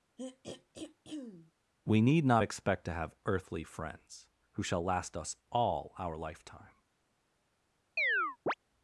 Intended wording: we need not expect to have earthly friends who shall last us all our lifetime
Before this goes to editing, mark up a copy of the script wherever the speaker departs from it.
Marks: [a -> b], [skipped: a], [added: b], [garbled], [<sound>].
[throat clearing] we need not expect to have earthly friends who shall last us all our lifetime [chirp]